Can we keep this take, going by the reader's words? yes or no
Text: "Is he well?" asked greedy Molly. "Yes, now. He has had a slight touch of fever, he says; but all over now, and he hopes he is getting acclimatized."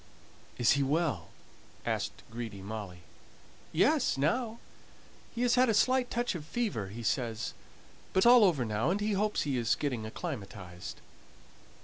yes